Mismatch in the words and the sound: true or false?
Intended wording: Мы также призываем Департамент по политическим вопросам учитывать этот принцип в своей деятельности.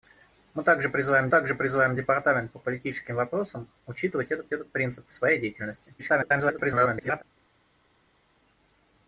true